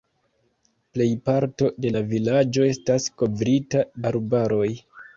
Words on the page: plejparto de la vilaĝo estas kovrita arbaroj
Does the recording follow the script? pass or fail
pass